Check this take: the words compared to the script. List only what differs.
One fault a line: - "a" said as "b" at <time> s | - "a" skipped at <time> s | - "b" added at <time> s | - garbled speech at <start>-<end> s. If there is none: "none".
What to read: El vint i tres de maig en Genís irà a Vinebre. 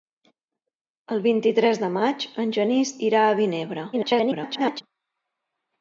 - garbled speech at 3.9-4.8 s